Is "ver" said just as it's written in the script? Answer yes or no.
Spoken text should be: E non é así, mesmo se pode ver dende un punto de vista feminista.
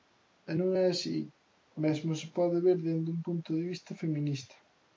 yes